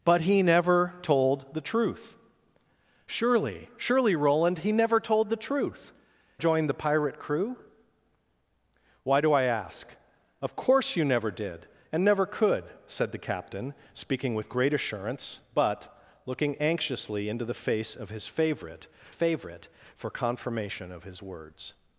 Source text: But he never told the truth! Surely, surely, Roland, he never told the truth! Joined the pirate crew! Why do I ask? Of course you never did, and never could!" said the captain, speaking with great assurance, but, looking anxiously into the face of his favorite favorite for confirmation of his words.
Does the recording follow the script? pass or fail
pass